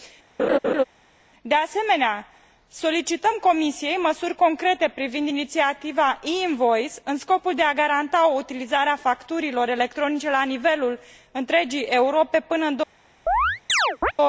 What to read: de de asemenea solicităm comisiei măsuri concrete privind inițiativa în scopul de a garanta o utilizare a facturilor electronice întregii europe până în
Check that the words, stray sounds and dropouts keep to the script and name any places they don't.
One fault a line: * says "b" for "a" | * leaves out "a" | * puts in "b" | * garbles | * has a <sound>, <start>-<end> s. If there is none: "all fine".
* has a laugh, 0.4-0.8 s
* leaves out "de"
* puts in "e invoice"
* puts in "la nivelul"
* has a chirp, 13.3-14.1 s